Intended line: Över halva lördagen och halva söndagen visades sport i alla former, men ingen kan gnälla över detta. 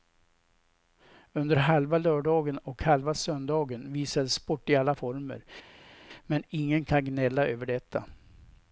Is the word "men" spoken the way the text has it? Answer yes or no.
yes